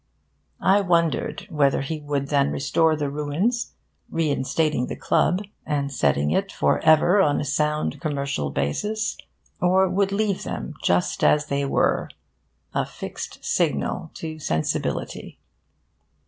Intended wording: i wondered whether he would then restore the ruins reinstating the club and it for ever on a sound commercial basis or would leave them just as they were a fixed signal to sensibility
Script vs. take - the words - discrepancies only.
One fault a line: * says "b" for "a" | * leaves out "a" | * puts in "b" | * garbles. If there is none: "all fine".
* puts in "setting"